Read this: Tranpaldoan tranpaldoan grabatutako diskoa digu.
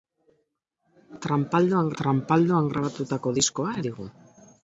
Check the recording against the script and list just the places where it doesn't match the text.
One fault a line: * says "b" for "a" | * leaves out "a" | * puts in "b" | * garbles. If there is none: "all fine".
all fine